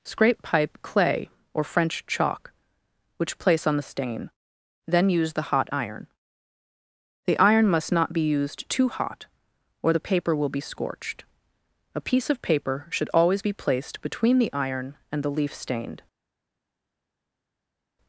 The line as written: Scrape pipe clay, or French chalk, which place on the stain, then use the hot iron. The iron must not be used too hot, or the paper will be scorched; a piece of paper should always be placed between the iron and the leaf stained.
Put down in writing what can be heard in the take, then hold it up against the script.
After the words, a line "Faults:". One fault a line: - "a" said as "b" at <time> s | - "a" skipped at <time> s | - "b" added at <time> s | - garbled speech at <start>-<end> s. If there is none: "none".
Scrape pipe clay, or French chalk, which place on the stain, then use the hot iron. The iron must not be used too hot, or the paper will be scorched; a piece of paper should always be placed between the iron and the leaf stained.
Faults:
none